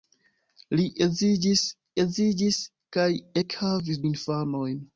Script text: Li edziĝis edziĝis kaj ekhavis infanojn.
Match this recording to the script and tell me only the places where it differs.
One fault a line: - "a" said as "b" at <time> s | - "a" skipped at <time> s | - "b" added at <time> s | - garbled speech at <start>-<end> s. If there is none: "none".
none